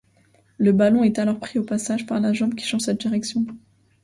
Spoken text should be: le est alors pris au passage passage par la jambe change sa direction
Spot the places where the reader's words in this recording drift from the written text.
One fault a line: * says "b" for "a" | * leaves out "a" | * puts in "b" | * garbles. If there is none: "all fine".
* puts in "ballon"
* leaves out "passage"
* puts in "qui"